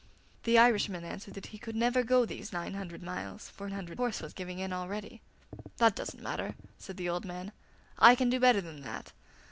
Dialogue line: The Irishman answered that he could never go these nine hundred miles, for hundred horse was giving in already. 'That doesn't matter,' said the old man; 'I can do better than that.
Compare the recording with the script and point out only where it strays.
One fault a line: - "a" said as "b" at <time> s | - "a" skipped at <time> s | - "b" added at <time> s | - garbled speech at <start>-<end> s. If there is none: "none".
none